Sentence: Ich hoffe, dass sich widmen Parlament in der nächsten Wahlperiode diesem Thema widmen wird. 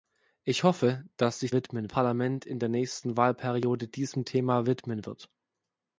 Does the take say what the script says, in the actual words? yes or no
yes